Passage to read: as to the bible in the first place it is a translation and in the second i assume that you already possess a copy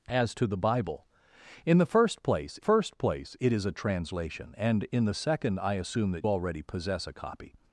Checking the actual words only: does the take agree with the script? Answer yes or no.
no